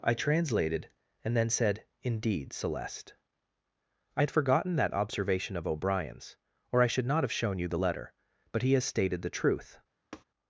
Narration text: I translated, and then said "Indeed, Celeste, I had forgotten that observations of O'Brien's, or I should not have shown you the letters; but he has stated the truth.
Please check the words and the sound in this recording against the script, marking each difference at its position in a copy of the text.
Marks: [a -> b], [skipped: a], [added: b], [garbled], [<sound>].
I translated, and then said "Indeed, Celeste, I had forgotten that [observations -> observation] of O'Brien's, or I should not have shown you the [letters; -> letter] but he has stated the truth. [tap]